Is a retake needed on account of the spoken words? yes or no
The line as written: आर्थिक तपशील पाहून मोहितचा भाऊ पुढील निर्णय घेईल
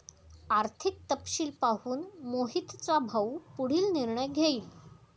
no